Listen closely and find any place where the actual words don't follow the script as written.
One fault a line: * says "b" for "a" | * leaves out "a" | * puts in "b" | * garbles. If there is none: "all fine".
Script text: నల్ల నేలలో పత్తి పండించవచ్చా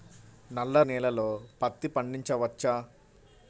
all fine